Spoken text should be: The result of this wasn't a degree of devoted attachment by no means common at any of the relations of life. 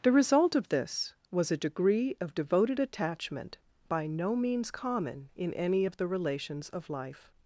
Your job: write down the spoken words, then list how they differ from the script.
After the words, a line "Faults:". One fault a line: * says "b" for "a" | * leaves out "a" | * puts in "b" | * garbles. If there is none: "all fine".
The result of this was a degree of devoted attachment by no means common in any of the relations of life.
Faults:
* says "was" for "wasn't"
* says "in" for "at"